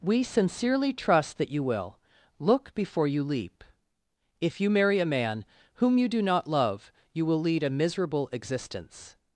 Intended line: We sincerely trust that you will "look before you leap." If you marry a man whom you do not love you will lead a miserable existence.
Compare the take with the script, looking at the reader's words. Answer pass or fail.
pass